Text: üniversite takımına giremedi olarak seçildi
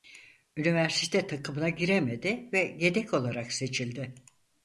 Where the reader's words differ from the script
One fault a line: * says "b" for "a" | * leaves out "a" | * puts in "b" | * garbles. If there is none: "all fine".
* puts in "ve yedek"